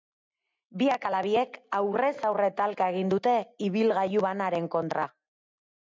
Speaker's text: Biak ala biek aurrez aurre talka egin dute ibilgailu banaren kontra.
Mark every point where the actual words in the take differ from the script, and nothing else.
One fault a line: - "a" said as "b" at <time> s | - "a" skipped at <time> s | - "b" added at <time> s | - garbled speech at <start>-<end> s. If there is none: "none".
none